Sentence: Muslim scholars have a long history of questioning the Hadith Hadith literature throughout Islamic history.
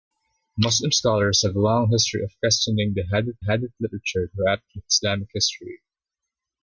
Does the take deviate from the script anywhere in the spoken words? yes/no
no